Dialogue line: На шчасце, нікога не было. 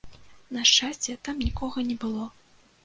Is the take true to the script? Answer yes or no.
no